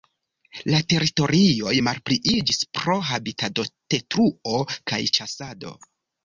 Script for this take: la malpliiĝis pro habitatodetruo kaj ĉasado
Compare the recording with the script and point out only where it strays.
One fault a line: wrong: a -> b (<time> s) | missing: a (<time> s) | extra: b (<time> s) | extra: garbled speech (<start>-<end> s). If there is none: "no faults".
extra: teritorioj (0.9 s)